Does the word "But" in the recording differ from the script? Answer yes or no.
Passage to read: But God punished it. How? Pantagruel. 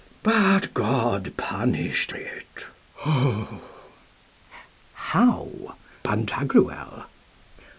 no